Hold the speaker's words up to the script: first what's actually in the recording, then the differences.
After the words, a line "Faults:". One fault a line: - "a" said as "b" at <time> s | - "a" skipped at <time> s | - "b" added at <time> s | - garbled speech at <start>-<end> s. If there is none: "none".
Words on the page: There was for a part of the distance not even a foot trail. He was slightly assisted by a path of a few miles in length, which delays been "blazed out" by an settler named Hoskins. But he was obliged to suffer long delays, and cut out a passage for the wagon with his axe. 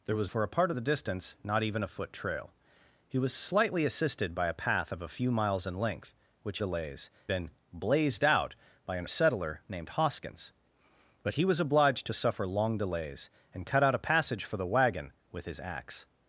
There was for a part of the distance not even a foot trail. He was slightly assisted by a path of a few miles in length, which delays been "blazed out" by an settler named Hoskins. But he was obliged to suffer long delays, and cut out a passage for the wagon with his axe.
Faults:
none